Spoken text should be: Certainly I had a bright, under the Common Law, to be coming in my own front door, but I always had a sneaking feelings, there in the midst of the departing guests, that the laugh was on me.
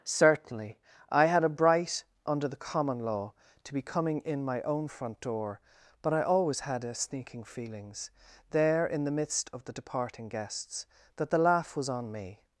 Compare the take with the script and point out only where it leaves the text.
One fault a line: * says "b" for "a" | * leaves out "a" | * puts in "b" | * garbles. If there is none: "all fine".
all fine